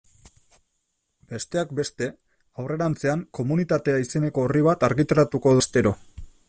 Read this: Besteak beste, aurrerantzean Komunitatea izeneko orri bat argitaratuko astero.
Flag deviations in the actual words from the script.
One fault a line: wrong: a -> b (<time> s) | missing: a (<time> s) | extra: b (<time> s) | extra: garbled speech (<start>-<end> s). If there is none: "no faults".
no faults